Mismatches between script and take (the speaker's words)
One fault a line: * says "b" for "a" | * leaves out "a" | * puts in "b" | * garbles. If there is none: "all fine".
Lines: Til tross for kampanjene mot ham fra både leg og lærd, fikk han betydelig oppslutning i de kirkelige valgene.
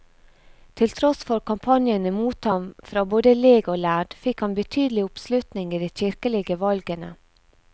all fine